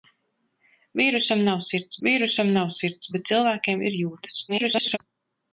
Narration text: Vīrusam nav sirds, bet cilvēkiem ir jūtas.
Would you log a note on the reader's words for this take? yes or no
yes